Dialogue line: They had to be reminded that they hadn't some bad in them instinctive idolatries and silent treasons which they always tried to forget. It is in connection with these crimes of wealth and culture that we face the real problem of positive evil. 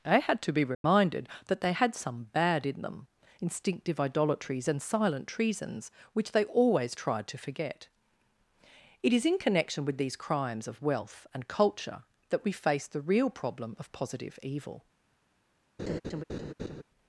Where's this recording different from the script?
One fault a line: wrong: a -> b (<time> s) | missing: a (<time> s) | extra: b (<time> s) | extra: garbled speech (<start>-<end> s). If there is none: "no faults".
wrong: hadn't -> had (1.7 s)